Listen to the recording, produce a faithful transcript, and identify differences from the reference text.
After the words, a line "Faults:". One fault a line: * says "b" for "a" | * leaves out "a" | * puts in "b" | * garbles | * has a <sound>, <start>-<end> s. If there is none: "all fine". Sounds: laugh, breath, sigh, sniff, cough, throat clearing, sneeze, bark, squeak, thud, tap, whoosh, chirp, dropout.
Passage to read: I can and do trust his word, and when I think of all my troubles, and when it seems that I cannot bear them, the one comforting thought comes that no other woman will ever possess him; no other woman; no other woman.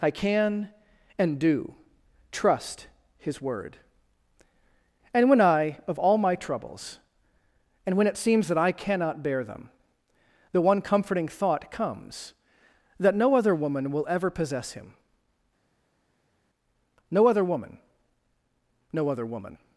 I can and do trust his word, and when I of all my troubles, and when it seems that I cannot bear them, the one comforting thought comes that no other woman will ever possess him; no other woman; no other woman.
Faults:
* leaves out "think"